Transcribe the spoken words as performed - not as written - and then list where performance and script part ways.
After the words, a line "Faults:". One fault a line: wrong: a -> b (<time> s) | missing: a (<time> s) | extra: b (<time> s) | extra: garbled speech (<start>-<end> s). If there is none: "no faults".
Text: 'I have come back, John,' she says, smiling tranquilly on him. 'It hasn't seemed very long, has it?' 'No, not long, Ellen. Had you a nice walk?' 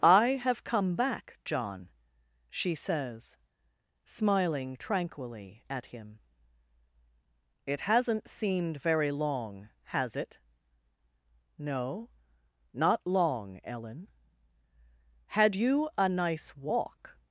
'I have come back, John,' she says, smiling tranquilly at him. 'It hasn't seemed very long, has it?' 'No, not long, Ellen. Had you a nice walk?'
Faults:
wrong: on -> at (5.7 s)